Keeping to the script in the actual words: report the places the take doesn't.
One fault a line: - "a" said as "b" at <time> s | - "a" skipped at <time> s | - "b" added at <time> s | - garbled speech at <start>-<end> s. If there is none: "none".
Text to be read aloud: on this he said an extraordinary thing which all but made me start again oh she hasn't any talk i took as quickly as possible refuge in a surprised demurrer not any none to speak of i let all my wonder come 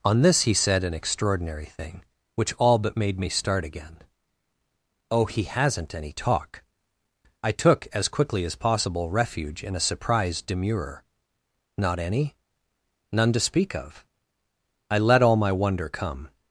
- "she" said as "he" at 5.2 s